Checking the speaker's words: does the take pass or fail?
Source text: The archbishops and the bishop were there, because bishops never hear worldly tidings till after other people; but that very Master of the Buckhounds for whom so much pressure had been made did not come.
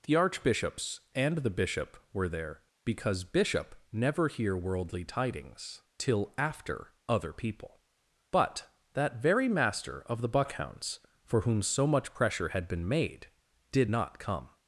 fail